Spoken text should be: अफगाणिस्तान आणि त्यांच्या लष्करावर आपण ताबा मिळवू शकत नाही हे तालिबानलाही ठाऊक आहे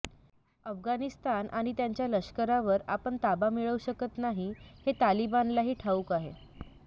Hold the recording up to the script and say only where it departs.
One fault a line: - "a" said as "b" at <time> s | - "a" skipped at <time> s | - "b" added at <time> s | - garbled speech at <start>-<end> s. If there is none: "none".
none